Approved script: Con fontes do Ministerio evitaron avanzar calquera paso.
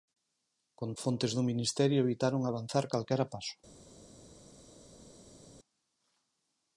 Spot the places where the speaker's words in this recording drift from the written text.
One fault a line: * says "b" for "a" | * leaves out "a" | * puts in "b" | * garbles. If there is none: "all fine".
all fine